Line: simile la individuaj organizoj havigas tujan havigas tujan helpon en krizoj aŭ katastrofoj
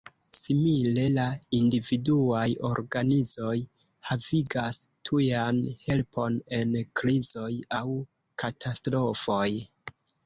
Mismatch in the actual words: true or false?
true